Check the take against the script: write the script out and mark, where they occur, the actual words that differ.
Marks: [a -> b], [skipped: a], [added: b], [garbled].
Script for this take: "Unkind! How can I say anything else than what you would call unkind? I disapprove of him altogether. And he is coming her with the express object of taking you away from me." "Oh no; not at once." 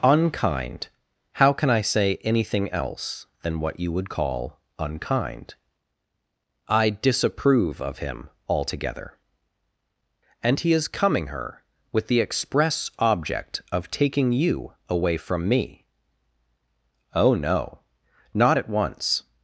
"Unkind! How can I say anything else than what you would call unkind? I disapprove of him altogether. And he is coming her with the express object of taking you away from me." "Oh no; not at once."